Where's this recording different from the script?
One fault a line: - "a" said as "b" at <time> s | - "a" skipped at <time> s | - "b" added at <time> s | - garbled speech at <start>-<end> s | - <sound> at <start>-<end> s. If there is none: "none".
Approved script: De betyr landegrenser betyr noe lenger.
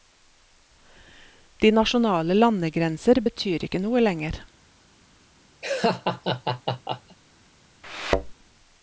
- "betyr" said as "nasjonale" at 1.7 s
- "ikke" added at 3.7 s
- laugh at 5.6-7.2 s
- thud at 7.8-8.3 s